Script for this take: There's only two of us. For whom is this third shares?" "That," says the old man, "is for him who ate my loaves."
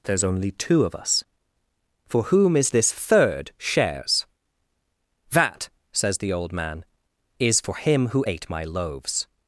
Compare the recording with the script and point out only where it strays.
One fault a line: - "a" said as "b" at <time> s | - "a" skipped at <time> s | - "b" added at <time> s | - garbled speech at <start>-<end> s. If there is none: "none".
none